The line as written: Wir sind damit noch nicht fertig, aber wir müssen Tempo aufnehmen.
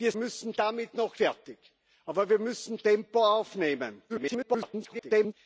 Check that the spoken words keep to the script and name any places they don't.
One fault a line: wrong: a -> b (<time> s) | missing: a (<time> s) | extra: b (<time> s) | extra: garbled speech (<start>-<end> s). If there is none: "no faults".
wrong: sind -> müssen (0.2 s)
missing: nicht (1.2 s)
extra: garbled speech (4.1-5.3 s)